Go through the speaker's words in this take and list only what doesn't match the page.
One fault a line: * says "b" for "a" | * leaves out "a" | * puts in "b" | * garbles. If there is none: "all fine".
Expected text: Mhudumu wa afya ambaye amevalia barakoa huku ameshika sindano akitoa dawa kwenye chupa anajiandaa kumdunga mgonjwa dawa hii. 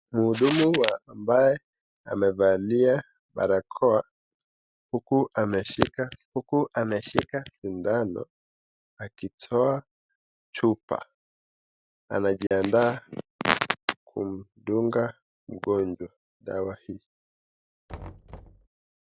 * leaves out "afya"
* puts in "huku ameshika"
* leaves out "dawa kwenye"